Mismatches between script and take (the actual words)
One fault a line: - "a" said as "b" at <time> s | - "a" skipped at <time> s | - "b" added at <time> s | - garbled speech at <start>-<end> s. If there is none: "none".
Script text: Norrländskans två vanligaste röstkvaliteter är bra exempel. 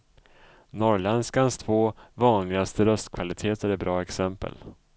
none